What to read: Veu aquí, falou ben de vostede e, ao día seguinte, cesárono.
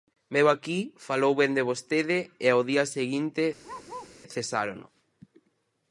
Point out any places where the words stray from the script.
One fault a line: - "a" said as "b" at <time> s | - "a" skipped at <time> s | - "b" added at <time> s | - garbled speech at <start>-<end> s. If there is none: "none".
none